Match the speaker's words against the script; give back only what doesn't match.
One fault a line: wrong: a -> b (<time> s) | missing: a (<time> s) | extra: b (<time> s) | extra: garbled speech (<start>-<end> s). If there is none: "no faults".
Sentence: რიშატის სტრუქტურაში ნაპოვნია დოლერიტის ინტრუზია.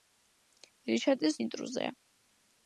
missing: სტრუქტურაში ნაპოვნია დოლერიტის (1.4 s)